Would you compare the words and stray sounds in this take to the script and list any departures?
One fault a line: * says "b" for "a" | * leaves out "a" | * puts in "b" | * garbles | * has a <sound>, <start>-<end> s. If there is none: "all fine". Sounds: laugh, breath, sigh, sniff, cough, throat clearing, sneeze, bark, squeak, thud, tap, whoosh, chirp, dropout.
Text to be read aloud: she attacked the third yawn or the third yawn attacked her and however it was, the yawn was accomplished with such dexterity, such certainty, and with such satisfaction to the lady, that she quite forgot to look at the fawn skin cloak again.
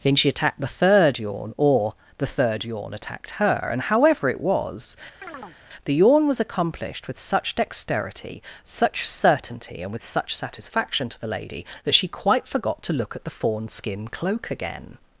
* puts in "then"
* has a chirp, 5.2-5.6 s